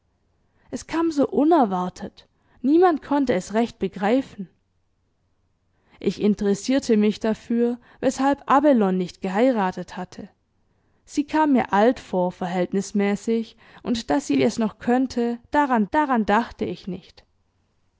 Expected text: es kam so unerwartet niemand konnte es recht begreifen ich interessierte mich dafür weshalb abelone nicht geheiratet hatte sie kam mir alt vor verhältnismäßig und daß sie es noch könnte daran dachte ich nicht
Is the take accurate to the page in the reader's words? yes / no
no